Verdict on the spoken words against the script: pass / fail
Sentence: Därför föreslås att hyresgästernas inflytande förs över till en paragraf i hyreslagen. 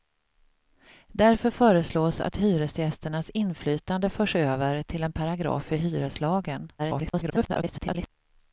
fail